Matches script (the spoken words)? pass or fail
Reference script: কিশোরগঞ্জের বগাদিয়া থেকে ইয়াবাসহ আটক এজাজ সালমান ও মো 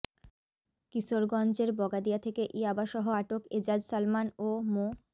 pass